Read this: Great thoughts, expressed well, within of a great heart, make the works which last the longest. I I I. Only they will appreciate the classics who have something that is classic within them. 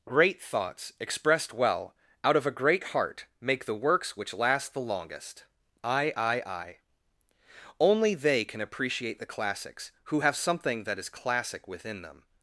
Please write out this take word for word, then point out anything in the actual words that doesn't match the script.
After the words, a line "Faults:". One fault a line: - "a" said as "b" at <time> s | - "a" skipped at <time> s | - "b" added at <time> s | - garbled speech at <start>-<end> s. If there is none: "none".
Great thoughts, expressed well, out of a great heart, make the works which last the longest. I I I. Only they can appreciate the classics who have something that is classic within them.
Faults:
- "within" said as "out" at 2.2 s
- "will" said as "can" at 8.5 s